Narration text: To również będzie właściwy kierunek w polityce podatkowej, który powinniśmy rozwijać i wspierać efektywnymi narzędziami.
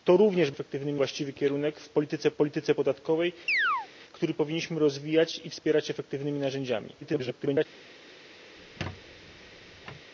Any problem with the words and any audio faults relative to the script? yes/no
yes